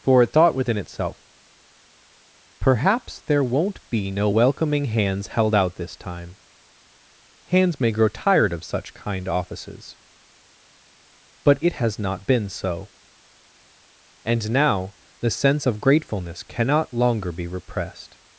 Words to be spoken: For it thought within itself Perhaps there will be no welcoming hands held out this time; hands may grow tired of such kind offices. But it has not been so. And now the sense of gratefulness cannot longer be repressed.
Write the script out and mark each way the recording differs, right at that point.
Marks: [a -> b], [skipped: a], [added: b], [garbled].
For it thought within itself Perhaps there [will -> won't] be no welcoming hands held out this time; hands may grow tired of such kind offices. But it has not been so. And now the sense of gratefulness cannot longer be repressed.